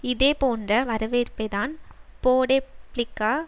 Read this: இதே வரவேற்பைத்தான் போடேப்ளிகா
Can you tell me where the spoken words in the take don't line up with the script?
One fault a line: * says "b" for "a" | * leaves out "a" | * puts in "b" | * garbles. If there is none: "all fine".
* puts in "போன்ற"